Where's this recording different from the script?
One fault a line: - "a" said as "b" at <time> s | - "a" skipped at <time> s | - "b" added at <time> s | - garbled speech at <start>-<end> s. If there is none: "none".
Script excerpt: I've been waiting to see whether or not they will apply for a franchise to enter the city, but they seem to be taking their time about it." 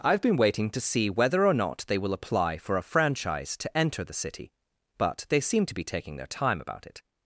none